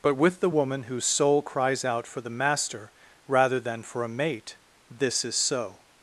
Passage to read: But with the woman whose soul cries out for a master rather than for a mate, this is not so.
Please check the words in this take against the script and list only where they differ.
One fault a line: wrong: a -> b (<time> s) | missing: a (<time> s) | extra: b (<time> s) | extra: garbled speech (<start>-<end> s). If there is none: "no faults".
wrong: a -> the (2.2 s)
missing: not (5.3 s)